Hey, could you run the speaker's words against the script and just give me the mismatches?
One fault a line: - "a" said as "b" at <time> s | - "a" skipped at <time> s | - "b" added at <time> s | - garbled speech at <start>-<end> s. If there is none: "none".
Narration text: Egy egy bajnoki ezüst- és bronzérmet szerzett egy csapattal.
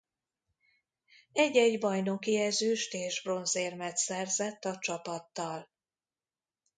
- "egy" said as "a" at 4.6 s